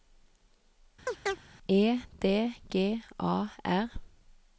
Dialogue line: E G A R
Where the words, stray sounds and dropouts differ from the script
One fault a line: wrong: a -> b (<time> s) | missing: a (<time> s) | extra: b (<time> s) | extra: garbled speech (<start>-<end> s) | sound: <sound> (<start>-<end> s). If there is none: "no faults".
sound: chirp (1.1-1.4 s)
extra: D (2.2 s)